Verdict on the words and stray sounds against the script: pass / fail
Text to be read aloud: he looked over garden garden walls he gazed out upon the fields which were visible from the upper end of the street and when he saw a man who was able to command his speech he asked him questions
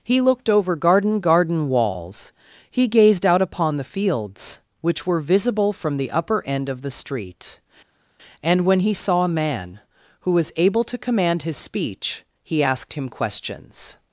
pass